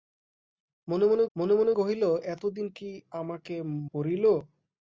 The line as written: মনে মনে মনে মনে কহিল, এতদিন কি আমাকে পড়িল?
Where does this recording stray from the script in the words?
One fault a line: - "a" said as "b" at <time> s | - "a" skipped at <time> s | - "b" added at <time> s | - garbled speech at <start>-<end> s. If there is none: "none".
none